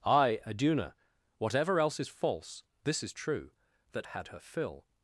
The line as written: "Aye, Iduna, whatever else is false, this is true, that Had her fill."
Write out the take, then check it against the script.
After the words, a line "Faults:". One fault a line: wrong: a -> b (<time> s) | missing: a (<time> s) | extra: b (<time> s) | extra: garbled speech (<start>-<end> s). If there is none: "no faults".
"Aye, Iduna, whatever else is false, this is true, that Had her fill."
Faults:
no faults